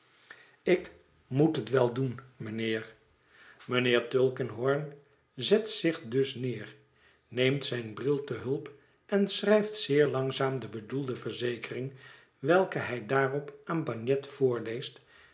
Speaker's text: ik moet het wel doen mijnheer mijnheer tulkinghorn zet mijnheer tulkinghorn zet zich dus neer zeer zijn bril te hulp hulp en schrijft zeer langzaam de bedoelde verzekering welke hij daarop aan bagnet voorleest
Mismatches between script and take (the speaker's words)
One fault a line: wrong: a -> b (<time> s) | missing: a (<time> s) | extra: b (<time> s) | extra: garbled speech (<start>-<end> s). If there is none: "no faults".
missing: mijnheer tulkinghorn zet (5.7 s)
wrong: zeer -> neemt (7.3 s)
missing: hulp (8.7 s)